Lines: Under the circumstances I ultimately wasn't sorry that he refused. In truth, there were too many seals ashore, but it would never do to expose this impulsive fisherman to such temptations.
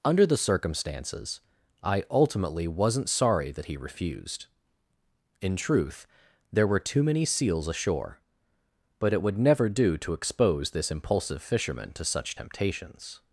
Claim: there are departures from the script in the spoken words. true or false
false